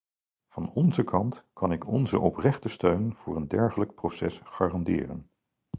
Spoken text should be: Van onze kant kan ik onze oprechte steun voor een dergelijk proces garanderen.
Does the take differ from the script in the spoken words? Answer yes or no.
no